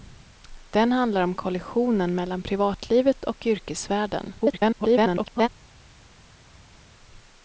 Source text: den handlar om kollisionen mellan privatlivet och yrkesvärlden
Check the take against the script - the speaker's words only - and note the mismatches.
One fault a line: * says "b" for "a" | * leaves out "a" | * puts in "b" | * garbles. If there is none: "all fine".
* garbles